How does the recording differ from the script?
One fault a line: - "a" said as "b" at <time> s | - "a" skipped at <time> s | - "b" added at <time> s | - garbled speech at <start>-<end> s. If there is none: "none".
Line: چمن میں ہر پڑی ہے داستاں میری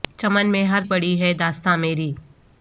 none